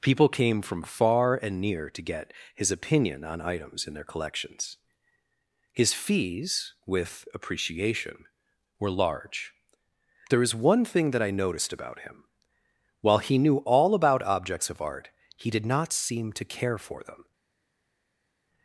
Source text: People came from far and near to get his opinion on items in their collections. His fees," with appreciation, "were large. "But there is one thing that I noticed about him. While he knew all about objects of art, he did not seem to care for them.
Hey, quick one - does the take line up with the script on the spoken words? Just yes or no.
no